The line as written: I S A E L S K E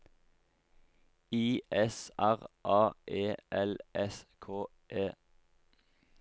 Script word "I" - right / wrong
right